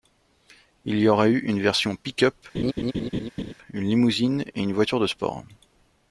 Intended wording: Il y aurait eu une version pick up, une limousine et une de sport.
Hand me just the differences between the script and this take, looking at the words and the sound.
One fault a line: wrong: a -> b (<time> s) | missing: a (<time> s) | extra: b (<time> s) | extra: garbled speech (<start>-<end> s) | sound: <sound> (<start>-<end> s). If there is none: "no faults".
sound: laugh (2.5-3.5 s)
extra: voiture (4.7 s)